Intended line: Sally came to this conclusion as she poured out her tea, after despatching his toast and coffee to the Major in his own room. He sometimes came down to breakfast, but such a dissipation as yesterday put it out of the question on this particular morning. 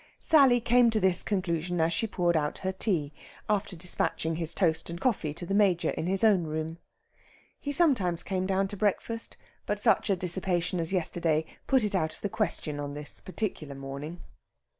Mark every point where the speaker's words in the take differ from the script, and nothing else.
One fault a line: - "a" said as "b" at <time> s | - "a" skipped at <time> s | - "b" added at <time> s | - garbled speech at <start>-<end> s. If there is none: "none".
none